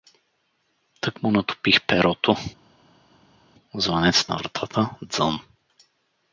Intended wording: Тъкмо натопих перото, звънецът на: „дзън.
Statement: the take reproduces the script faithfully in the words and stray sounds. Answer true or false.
false